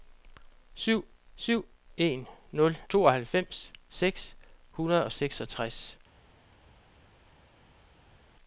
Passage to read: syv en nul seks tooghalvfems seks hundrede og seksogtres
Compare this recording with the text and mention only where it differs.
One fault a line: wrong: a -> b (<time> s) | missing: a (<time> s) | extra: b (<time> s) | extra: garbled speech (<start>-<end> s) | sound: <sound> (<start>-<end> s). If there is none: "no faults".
extra: syv (1.4 s)
missing: seks (2.8 s)